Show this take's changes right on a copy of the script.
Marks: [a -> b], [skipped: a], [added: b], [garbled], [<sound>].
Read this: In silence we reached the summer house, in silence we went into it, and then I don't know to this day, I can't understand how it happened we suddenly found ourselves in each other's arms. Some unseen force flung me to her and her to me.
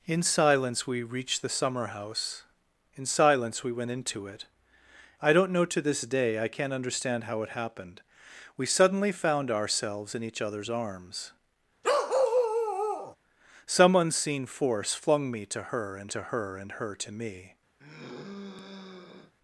In silence we reached the summer house, in silence we went into it, [skipped: and then] I don't know to this day, I can't understand how it happened we suddenly found ourselves in each other's arms. [bark] Some unseen force flung me to her and [added: to her and] her to me. [sigh]